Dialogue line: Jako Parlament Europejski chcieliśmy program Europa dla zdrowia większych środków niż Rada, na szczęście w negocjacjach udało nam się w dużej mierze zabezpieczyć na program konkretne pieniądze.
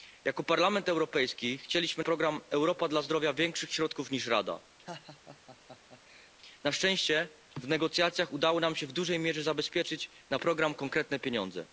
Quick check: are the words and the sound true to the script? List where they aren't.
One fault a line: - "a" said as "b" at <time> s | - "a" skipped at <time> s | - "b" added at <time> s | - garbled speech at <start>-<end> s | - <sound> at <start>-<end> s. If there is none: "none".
- laugh at 4.9-6.3 s